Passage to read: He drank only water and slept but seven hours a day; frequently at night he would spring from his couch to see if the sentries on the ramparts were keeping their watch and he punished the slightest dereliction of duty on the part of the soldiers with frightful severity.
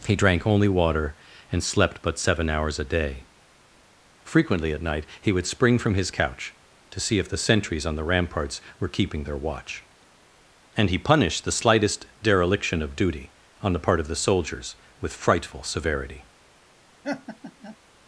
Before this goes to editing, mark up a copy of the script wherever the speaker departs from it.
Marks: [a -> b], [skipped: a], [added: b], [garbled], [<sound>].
He drank only water and slept but seven hours a day; frequently at night he would spring from his couch to see if the sentries on the ramparts were keeping their watch and he punished the slightest dereliction of duty on the part of the soldiers with frightful severity. [laugh]